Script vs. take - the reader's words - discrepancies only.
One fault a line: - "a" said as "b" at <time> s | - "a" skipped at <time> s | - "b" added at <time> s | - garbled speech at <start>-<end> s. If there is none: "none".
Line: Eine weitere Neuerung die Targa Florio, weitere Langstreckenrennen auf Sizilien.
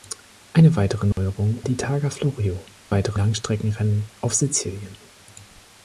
none